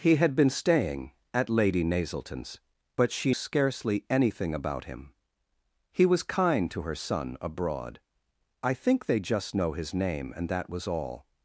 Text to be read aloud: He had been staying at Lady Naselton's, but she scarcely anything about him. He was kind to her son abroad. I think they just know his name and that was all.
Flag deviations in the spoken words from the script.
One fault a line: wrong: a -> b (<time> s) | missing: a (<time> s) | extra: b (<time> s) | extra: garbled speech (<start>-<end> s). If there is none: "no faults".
no faults